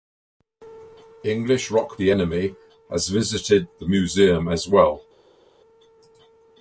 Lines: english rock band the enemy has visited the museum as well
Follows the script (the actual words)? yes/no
no